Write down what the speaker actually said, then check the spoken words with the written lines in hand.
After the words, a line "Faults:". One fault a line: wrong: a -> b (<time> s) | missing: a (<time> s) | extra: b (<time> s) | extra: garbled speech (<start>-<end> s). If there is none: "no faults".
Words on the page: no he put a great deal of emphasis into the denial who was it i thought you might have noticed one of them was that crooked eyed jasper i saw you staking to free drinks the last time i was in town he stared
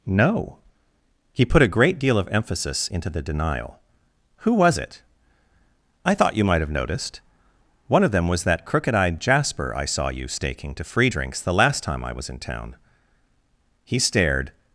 no he put a great deal of emphasis into the denial who was it i thought you might have noticed one of them was that crooked eyed jasper i saw you staking to free drinks the last time i was in town he stared
Faults:
no faults